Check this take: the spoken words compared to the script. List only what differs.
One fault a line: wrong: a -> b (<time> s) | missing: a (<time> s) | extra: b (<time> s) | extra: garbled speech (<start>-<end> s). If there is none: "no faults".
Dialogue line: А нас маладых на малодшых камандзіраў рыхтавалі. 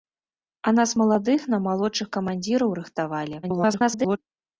extra: garbled speech (3.4-4.2 s)